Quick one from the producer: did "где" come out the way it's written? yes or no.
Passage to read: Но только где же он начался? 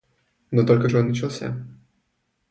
no